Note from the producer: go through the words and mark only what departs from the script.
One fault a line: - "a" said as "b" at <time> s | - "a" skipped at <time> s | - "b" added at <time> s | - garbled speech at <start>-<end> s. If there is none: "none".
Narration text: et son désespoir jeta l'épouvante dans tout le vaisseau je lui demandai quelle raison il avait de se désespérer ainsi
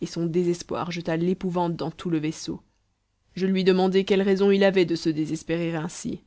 none